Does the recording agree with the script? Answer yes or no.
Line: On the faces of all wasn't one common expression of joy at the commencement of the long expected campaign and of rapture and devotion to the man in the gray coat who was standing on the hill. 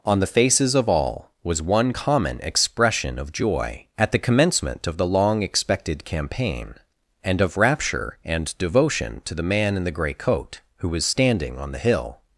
no